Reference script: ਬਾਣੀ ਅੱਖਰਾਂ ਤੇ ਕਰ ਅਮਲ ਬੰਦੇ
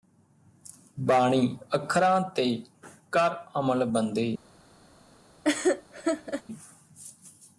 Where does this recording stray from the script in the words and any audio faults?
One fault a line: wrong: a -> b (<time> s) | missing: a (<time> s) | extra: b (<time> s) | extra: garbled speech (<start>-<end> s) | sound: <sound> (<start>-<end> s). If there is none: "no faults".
sound: laugh (5.4-6.4 s)